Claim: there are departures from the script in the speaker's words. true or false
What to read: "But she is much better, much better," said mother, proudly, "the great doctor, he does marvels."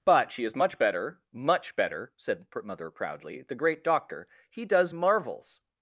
false